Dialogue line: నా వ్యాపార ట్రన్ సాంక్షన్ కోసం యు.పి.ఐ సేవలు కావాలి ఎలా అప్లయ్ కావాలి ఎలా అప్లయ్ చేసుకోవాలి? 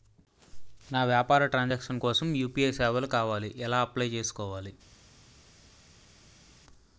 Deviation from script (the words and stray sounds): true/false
true